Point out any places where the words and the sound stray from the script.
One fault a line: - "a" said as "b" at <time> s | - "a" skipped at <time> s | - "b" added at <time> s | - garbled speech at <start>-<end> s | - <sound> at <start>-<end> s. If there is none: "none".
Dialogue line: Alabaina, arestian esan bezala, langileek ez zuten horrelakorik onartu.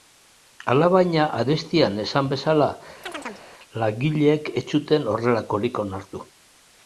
- chirp at 3.0-3.5 s